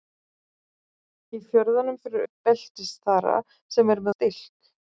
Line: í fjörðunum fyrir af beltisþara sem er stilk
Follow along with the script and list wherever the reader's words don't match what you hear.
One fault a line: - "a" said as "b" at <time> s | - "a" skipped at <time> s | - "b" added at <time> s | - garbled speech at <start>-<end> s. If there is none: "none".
none